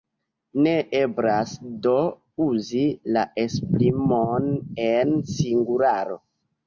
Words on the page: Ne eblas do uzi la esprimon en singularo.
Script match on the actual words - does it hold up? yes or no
yes